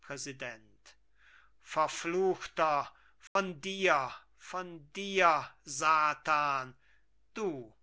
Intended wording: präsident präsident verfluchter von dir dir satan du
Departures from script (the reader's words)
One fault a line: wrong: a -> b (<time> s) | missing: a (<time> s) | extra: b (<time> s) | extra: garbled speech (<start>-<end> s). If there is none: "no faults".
missing: präsident (1.0 s)
extra: von (4.3 s)